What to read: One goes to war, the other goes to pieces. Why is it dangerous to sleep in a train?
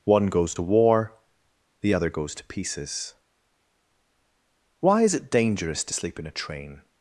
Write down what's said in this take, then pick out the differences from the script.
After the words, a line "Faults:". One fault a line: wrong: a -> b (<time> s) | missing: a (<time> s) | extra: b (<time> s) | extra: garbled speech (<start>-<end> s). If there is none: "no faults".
One goes to war, the other goes to pieces. Why is it dangerous to sleep in a train?
Faults:
no faults